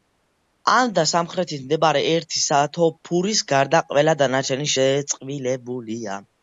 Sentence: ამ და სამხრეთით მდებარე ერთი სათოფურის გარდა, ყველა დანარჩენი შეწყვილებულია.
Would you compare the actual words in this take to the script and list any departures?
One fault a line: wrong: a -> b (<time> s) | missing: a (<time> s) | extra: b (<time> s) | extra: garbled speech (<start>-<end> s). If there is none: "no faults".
no faults